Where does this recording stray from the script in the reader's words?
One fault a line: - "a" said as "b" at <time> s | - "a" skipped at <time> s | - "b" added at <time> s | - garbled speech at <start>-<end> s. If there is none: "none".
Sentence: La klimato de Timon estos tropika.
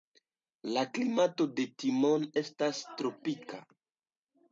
- "estos" said as "estas" at 2.4 s